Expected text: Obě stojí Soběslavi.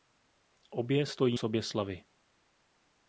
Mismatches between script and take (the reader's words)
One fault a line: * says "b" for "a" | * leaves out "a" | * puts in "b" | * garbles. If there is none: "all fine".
all fine